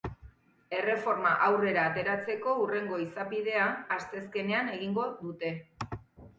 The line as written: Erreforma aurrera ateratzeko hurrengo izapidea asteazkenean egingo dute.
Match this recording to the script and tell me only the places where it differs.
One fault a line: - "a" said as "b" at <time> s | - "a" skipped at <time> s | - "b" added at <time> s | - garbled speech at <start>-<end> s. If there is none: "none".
none